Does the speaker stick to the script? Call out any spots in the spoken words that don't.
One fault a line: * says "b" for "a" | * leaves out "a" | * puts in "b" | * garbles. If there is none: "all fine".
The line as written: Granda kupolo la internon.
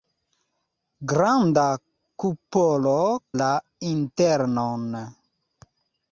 all fine